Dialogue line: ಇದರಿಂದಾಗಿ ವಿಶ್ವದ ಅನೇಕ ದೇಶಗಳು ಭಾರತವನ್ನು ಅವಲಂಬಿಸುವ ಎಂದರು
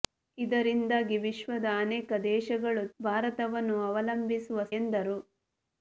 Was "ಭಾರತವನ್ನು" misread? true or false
false